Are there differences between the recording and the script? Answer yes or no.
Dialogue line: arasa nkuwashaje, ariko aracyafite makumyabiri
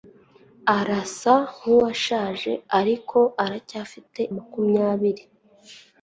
no